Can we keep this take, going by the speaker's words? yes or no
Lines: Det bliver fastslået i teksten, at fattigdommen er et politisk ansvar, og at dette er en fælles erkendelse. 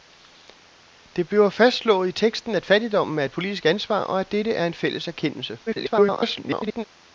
no